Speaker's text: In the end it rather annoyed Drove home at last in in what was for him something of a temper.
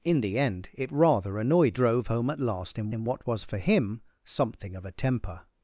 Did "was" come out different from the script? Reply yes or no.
no